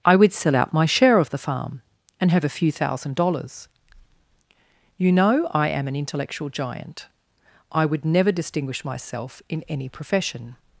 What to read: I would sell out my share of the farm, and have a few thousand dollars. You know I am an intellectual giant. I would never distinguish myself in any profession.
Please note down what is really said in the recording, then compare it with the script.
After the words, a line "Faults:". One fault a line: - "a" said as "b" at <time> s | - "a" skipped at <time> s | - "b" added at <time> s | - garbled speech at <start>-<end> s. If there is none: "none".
I would sell out my share of the farm, and have a few thousand dollars. You know I am an intellectual giant. I would never distinguish myself in any profession.
Faults:
none